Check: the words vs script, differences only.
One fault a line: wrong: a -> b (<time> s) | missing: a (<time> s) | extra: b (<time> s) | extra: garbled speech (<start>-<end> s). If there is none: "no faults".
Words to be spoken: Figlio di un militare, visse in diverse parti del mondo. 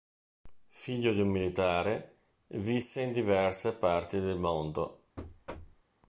no faults